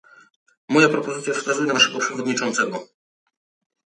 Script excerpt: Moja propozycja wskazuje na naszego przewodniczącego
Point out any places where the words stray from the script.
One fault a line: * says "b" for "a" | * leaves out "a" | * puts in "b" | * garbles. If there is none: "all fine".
all fine